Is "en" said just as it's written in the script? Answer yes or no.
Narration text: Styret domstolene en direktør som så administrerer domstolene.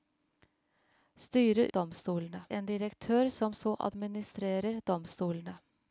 yes